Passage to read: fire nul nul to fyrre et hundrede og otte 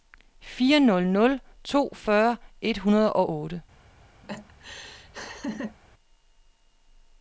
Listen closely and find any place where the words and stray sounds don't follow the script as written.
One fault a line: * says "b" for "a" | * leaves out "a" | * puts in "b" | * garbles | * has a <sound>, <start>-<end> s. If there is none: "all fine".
* has a laugh, 4.2-5.8 s